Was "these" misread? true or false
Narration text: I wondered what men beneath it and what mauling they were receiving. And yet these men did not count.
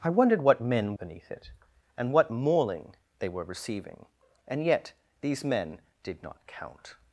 false